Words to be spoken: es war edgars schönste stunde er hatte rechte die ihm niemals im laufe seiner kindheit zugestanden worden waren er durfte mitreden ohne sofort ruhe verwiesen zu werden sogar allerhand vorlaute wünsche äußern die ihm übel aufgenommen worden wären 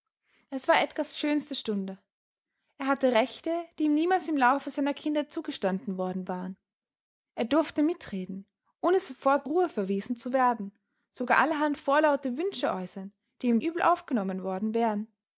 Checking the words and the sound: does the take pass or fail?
pass